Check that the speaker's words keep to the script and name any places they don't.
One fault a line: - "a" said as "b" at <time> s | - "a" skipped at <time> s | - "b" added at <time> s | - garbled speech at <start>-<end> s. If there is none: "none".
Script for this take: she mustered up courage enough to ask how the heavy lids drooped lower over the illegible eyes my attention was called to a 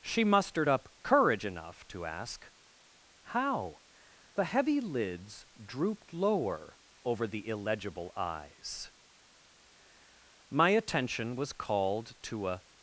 none